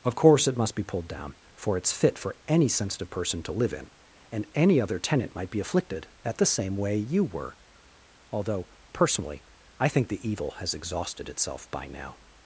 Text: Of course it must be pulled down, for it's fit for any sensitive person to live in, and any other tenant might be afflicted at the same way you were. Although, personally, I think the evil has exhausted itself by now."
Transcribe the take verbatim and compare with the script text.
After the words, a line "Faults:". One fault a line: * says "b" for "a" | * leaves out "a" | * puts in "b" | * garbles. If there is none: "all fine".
Of course it must be pulled down, for it's fit for any sensitive person to live in, and any other tenant might be afflicted at the same way you were. Although, personally, I think the evil has exhausted itself by now."
Faults:
all fine